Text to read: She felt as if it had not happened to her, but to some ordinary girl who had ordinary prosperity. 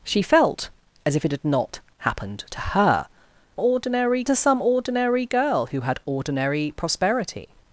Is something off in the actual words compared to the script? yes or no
yes